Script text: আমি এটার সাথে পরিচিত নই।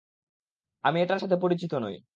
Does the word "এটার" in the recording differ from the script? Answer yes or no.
no